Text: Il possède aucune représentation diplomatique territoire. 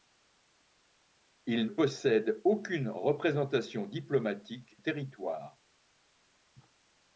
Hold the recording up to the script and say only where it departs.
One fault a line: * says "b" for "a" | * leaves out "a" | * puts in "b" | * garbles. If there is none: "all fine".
all fine